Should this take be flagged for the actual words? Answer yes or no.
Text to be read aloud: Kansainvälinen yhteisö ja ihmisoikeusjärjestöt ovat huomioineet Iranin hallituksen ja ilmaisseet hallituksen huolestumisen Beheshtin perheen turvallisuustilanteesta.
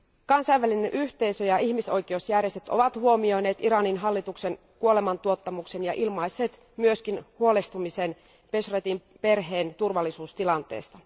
yes